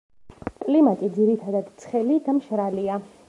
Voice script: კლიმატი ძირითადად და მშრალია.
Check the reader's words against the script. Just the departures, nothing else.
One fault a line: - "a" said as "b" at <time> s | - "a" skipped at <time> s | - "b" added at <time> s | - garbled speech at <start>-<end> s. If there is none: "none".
- "ცხელი" added at 1.8 s